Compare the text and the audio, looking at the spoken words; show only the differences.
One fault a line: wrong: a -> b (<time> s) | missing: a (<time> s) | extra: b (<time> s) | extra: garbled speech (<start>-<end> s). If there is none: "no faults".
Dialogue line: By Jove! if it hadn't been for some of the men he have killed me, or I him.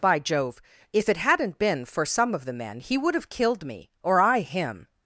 extra: would (3.0 s)